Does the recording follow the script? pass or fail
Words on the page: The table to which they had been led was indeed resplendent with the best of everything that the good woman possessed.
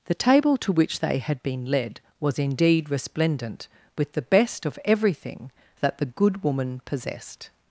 pass